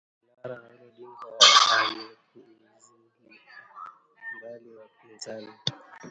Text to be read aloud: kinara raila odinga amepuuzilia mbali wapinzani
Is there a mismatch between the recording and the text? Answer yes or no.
no